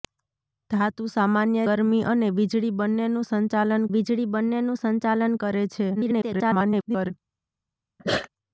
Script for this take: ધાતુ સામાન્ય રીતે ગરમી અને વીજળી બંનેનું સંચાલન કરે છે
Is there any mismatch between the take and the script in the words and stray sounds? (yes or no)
yes